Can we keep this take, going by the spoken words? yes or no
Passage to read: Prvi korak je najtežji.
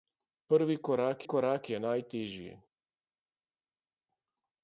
no